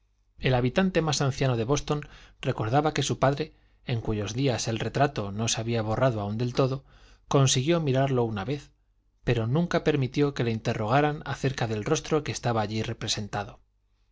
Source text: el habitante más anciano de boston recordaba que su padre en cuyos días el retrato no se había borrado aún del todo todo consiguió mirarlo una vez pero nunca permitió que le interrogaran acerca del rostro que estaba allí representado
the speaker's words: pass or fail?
fail